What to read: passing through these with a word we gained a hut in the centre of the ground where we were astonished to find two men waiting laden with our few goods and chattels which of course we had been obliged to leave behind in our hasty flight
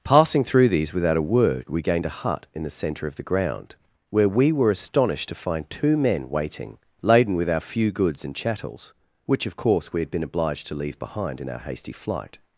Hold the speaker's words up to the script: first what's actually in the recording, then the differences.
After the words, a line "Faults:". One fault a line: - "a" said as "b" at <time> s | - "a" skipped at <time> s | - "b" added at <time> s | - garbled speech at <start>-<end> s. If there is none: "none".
passing through these without a word we gained a hut in the centre of the ground where we were astonished to find two men waiting laden with our few goods and chattels which of course we had been obliged to leave behind in our hasty flight
Faults:
- "with" said as "without" at 0.9 s